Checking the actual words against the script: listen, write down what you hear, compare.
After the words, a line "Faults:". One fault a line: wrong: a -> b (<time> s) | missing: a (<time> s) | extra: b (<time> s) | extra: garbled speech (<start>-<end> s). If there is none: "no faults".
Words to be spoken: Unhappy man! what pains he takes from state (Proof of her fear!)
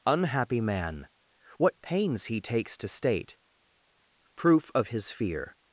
Unhappy man! what pains he takes to state (Proof of his fear!)
Faults:
wrong: from -> to (2.8 s)
wrong: her -> his (4.9 s)